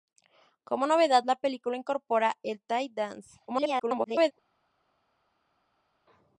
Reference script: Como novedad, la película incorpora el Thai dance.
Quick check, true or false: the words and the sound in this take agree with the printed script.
false